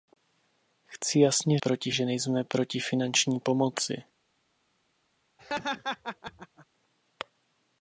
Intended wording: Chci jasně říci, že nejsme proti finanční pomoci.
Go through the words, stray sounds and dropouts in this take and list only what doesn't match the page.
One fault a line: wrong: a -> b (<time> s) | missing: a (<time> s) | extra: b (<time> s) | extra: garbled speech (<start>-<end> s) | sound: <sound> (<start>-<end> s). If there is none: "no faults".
wrong: říci -> proti (1.6 s)
sound: laugh (5.4-6.7 s)